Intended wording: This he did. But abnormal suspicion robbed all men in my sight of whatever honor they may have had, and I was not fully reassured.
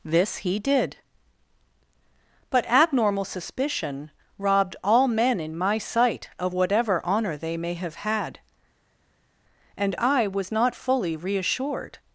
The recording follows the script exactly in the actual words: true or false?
true